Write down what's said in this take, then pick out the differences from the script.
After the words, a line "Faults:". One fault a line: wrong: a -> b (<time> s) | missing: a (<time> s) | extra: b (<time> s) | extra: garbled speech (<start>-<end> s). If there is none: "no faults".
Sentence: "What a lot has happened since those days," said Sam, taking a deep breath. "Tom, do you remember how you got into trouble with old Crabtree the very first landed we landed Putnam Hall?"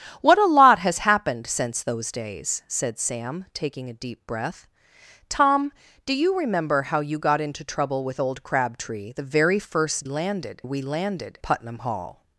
"What a lot has happened since those days," said Sam, taking a deep breath. "Tom, do you remember how you got into trouble with old Crabtree the very first landed we landed Putnam Hall?"
Faults:
no faults